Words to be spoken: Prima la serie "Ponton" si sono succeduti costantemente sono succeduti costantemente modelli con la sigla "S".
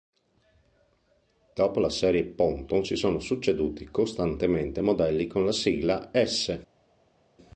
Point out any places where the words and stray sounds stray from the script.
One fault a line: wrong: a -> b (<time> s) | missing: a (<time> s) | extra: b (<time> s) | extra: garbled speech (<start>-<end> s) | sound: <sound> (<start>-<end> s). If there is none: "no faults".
wrong: Prima -> Dopo (1.5 s)
missing: sono succeduti costantemente (4.8 s)